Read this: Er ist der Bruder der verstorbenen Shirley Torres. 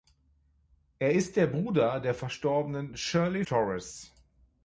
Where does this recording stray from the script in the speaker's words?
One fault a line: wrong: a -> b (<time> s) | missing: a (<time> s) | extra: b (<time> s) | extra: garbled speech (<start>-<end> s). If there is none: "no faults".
no faults